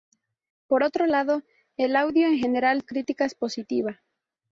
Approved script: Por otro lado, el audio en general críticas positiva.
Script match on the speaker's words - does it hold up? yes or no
yes